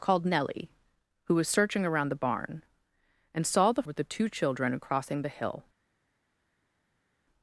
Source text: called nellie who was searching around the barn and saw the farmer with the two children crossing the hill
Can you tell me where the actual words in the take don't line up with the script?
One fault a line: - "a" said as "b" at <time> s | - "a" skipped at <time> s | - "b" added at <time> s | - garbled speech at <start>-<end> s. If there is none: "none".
- "farmer" skipped at 3.8 s